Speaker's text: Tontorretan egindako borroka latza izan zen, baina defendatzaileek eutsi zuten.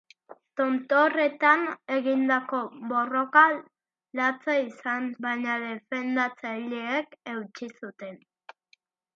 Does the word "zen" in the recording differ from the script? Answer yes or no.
yes